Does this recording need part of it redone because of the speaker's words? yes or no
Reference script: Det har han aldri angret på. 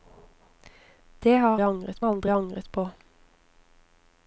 yes